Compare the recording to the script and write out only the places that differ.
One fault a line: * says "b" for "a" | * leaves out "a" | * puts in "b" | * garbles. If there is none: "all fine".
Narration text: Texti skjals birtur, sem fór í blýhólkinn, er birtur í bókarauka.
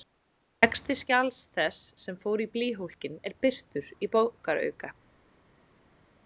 * says "þess" for "birtur"